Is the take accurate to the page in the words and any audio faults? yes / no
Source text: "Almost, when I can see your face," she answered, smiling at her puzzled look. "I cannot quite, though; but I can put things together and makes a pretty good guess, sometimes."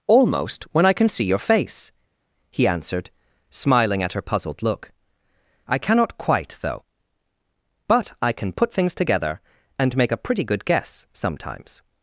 no